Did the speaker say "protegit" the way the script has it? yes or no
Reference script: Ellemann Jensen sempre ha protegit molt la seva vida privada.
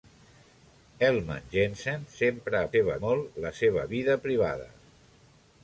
no